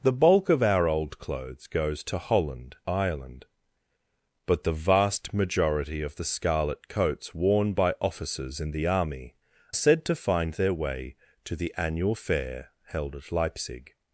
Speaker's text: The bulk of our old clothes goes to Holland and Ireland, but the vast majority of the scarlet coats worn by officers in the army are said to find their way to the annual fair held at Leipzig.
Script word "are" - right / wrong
wrong